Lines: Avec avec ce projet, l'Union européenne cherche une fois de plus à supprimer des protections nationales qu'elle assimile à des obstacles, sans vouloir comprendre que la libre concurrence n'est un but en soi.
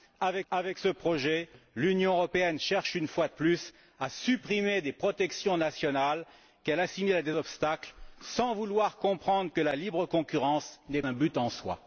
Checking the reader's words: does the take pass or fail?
pass